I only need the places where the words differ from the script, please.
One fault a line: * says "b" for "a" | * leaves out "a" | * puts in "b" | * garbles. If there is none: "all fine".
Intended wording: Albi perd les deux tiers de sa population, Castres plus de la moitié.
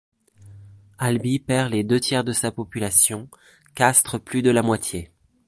all fine